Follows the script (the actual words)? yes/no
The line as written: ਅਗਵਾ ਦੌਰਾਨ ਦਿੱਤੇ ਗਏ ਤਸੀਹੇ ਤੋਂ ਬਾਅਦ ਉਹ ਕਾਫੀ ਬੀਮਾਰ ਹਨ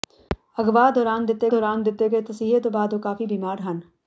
no